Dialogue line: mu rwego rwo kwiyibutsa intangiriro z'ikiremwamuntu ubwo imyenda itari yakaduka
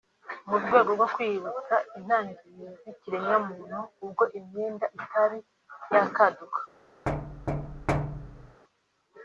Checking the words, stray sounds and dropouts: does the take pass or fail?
fail